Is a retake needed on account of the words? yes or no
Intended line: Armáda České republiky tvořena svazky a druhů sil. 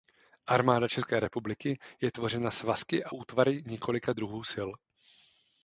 yes